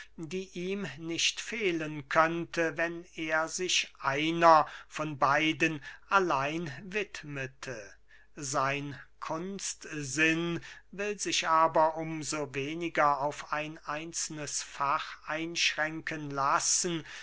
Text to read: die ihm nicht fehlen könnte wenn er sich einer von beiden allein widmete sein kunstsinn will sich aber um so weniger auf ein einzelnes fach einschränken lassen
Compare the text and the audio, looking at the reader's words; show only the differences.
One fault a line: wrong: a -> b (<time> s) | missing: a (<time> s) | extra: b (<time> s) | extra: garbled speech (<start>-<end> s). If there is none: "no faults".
no faults